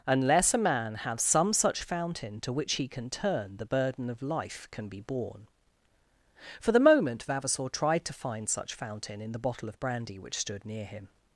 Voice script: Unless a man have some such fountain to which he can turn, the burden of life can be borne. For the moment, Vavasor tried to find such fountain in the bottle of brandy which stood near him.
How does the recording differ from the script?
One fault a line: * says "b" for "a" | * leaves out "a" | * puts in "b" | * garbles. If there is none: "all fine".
all fine